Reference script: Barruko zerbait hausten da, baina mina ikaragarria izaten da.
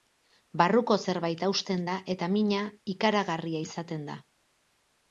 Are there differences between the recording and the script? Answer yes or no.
yes